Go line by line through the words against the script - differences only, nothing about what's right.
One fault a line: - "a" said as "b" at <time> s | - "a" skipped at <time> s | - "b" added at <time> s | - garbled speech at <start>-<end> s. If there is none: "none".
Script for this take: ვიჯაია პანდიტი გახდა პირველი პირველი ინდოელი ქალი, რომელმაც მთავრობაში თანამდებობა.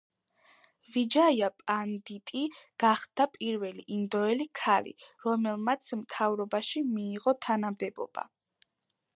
- "პირველი" skipped at 3.9 s
- "მიიღო" added at 7.0 s